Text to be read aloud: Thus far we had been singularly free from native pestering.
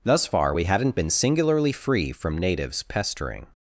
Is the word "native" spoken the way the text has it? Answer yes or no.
no